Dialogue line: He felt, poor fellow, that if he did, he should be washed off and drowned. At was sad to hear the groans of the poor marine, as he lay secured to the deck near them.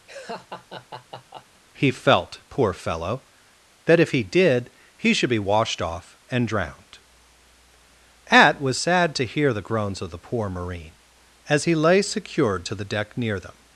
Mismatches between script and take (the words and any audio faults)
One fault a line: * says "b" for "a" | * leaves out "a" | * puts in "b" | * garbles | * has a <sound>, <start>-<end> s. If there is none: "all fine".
* has a laugh, 0.1-1.6 s